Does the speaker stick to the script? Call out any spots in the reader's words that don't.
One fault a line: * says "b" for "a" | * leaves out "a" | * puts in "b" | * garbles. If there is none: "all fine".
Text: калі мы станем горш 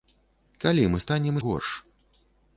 all fine